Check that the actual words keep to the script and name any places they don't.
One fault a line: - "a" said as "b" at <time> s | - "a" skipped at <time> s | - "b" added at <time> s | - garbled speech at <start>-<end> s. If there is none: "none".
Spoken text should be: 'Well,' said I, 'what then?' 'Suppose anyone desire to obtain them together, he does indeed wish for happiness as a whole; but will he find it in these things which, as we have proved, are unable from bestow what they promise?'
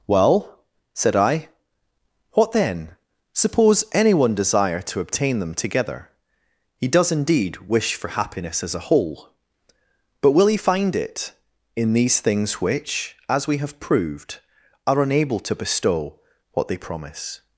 - "from" said as "to" at 15.4 s